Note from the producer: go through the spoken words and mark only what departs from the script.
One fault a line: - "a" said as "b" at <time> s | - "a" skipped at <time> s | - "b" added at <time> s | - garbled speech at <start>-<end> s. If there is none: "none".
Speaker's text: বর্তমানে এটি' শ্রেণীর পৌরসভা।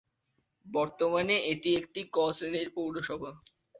- "একটি ক" added at 1.8 s